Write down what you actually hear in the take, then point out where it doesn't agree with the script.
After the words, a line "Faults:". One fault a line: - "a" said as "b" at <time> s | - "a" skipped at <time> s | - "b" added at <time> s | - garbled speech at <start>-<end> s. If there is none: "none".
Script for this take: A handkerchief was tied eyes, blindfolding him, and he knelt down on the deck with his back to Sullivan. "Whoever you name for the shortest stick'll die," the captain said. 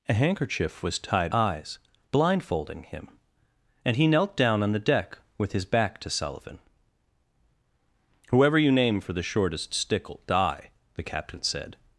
A handkerchief was tied eyes, blindfolding him, and he knelt down on the deck with his back to Sullivan. "Whoever you name for the shortest stick'll die," the captain said.
Faults:
none